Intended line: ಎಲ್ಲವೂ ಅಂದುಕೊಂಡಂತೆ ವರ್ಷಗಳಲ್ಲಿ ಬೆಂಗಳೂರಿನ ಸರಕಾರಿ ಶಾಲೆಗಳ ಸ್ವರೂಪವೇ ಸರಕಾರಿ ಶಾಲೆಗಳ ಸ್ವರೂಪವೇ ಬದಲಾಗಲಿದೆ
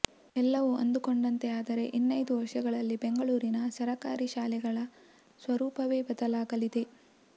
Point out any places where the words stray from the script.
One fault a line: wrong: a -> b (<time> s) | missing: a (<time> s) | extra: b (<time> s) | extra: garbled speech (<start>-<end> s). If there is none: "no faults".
extra: ಆದರೆ ಇನ್ನೈದು (1.6 s)
missing: ಸರಕಾರಿ ಶಾಲೆಗಳ ಸ್ವರೂಪವೇ (6.0 s)